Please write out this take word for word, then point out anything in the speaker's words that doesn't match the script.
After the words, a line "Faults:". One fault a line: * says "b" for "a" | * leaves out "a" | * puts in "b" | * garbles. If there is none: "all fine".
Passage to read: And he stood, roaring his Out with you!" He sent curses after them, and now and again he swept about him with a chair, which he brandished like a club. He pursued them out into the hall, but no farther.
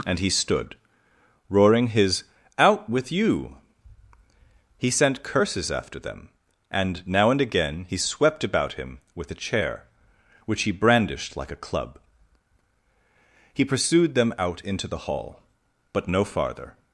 And he stood, roaring his Out with you!" He sent curses after them, and now and again he swept about him with a chair, which he brandished like a club. He pursued them out into the hall, but no farther.
Faults:
all fine